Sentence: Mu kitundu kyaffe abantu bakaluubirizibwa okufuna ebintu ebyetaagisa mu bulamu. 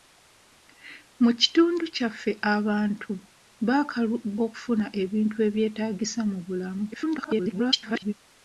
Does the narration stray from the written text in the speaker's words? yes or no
yes